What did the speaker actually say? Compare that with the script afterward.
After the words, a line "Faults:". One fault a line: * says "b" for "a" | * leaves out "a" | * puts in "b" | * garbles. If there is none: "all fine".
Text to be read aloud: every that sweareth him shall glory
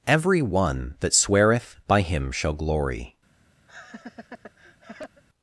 every one that sweareth by him shall glory
Faults:
* puts in "one"
* puts in "by"